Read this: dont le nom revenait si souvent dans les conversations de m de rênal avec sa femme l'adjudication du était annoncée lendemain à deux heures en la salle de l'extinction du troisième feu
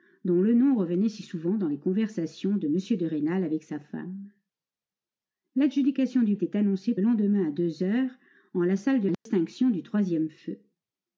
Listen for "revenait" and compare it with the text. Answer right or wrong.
right